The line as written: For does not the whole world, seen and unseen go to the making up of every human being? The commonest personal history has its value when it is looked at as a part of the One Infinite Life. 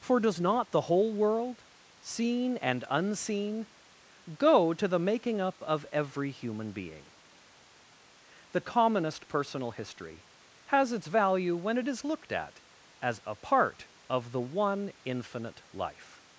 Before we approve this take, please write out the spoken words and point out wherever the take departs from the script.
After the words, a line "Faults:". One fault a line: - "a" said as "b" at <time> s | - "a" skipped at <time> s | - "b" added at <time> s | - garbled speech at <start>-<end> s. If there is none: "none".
For does not the whole world, seen and unseen go to the making up of every human being? The commonest personal history has its value when it is looked at as a part of the One Infinite Life.
Faults:
none